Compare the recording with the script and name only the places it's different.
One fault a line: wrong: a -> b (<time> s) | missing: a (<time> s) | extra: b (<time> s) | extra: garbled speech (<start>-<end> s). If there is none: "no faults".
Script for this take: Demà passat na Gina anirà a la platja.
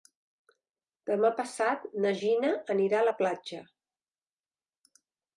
no faults